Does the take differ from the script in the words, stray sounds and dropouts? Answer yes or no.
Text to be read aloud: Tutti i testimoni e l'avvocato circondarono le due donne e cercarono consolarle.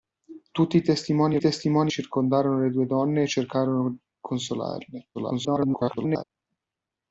yes